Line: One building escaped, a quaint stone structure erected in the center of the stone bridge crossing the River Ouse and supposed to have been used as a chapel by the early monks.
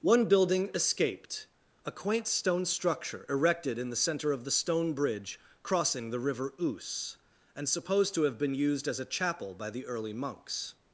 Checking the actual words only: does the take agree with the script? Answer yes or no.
yes